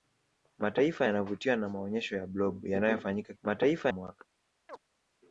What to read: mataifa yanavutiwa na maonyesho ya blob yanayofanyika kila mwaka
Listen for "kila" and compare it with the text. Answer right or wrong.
wrong